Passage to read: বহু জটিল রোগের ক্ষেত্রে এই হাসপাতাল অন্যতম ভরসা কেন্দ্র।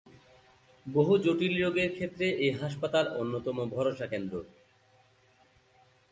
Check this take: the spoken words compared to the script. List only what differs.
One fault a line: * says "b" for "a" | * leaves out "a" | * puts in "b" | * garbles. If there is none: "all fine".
all fine